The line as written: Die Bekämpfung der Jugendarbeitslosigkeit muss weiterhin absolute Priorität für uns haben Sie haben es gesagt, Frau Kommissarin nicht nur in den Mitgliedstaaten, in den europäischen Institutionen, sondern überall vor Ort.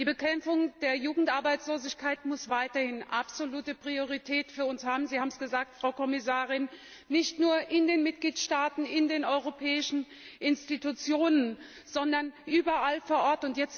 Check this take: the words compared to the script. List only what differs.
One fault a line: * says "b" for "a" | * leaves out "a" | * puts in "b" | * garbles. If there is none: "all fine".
all fine